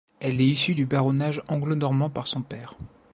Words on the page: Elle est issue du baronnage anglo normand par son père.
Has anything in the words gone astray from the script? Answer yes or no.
no